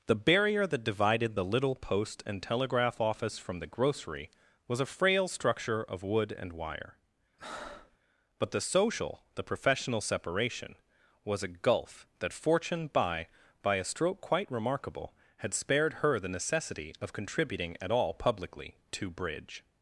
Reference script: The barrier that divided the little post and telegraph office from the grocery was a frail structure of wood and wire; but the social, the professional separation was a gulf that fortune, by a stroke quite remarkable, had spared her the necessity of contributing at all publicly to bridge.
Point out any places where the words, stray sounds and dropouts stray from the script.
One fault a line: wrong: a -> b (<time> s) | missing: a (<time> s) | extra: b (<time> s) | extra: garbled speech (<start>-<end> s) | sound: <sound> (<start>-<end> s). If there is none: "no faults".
sound: breath (7.4-8.0 s)
extra: by (13.6 s)